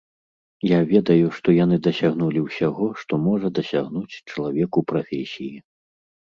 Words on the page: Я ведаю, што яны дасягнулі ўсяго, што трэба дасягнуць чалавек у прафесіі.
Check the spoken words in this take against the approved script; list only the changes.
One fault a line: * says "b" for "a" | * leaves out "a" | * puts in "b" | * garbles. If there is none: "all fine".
* says "можа" for "трэба"